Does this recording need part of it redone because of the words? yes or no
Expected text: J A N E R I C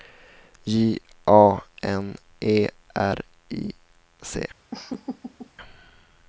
no